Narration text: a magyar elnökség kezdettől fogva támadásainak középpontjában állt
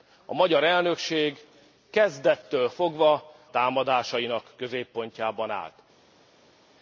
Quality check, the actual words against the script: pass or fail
pass